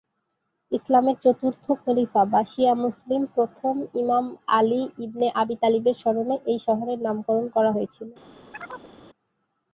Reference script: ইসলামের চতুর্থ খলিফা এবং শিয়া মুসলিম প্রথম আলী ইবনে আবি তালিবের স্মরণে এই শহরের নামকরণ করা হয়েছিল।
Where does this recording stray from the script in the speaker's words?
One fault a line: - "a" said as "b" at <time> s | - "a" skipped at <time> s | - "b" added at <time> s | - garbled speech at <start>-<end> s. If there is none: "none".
- "এবং" said as "বা" at 2.3 s
- "ইমাম" added at 4.0 s